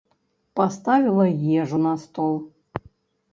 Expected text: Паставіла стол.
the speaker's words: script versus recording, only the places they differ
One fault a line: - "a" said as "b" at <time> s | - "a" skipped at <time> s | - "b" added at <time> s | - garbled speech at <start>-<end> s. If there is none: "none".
- "ежу на" added at 1.6 s